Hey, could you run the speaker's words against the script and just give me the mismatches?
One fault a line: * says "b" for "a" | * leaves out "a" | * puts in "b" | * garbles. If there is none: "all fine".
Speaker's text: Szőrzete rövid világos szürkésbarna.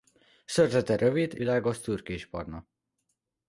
all fine